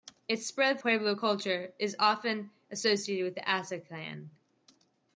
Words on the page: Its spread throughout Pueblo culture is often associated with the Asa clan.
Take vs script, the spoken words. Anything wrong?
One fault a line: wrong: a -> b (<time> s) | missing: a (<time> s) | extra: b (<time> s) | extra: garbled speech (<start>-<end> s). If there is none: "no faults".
missing: throughout (0.8 s)